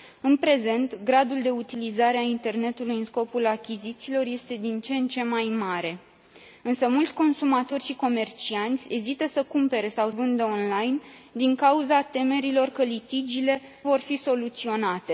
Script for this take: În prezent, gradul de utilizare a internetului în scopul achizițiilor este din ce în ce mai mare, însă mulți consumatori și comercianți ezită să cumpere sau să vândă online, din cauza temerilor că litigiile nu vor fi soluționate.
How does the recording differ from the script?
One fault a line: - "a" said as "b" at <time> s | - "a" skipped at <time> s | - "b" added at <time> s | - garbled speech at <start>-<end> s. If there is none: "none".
- "să" skipped at 10.1 s
- "nu" skipped at 13.6 s